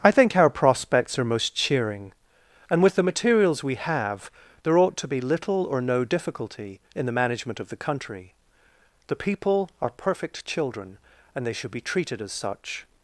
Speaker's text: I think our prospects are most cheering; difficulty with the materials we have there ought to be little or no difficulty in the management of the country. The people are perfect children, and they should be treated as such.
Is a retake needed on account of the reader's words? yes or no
yes